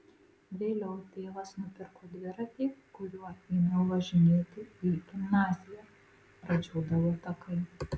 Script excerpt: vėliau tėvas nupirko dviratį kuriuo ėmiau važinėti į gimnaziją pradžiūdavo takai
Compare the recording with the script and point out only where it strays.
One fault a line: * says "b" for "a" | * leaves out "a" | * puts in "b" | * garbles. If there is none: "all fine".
all fine